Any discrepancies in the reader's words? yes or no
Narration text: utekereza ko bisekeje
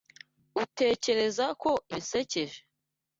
no